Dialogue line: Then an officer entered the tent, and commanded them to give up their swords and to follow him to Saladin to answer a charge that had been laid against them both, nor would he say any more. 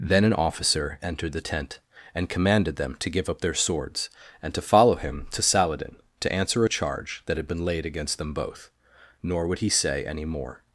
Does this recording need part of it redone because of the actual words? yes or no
no